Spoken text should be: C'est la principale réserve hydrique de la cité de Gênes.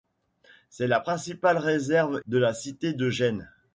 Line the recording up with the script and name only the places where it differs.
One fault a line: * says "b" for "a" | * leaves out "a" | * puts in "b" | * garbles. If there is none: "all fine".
* leaves out "hydrique"